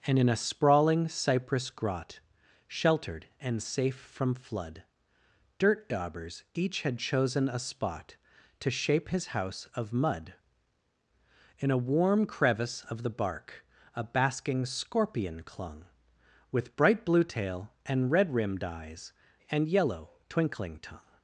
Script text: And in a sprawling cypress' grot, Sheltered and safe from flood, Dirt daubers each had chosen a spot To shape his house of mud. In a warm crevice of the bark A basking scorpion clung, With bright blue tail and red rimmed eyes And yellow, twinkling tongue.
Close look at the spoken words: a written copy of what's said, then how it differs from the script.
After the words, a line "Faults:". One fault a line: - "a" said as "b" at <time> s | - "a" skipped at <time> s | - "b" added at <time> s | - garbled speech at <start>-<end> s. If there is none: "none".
And in a sprawling cypress' grot, Sheltered and safe from flood, Dirt daubers each had chosen a spot To shape his house of mud. In a warm crevice of the bark A basking scorpion clung, With bright blue tail and red rimmed eyes And yellow, twinkling tongue.
Faults:
none